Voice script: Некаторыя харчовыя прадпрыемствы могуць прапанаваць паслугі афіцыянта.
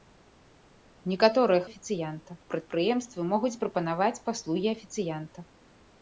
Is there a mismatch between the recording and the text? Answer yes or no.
yes